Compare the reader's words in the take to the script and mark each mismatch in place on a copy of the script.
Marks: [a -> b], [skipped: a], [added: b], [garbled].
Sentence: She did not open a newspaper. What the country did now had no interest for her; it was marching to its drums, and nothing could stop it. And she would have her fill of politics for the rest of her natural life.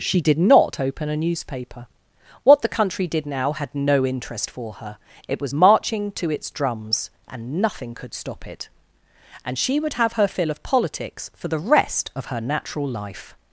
She did not open a newspaper. What the country did now had no interest for her; it was marching to its drums, and nothing could stop it. And she would have her fill of politics for the rest of her natural life.